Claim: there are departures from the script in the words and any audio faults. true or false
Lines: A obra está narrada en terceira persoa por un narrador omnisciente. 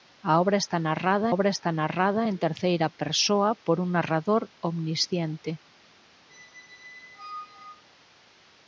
true